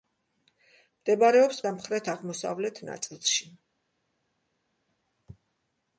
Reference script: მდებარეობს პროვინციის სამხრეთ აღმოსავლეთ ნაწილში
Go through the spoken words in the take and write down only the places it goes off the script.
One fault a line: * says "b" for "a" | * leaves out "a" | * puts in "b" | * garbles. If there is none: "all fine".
* leaves out "პროვინციის"